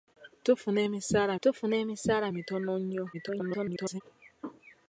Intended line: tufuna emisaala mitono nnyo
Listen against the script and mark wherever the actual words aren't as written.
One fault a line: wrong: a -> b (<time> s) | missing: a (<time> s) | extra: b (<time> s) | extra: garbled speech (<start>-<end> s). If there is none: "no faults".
extra: tufuna emisaala (1.4 s)
extra: garbled speech (3.1-4.0 s)